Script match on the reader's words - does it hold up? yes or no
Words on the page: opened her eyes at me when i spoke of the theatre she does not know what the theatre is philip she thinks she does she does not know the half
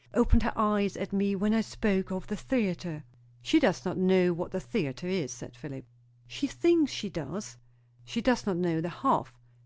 no